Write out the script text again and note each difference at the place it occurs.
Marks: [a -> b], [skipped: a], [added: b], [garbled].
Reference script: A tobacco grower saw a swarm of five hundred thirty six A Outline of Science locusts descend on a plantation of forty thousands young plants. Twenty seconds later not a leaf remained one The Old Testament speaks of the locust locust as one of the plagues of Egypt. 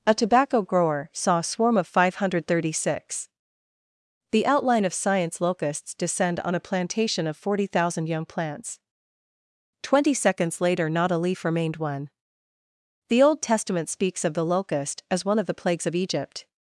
A tobacco grower saw a swarm of five hundred thirty six [A -> The] Outline of Science locusts descend on a plantation of forty [thousands -> thousand] young plants. Twenty seconds later not a leaf remained one The Old Testament speaks of the locust [skipped: locust] as one of the plagues of Egypt.